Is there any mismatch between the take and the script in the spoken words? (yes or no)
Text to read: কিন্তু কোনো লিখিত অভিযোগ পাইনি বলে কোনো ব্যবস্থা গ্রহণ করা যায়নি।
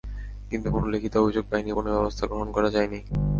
yes